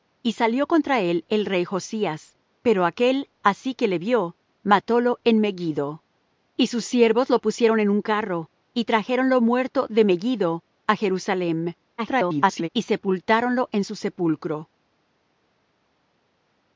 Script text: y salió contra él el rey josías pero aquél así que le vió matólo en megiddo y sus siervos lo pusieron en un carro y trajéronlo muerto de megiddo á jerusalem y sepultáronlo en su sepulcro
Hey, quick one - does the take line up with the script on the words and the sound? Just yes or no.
no